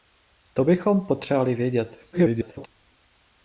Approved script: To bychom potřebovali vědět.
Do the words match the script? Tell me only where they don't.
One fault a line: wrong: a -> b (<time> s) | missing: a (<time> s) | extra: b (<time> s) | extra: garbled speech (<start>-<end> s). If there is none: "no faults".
extra: garbled speech (2.1-2.7 s)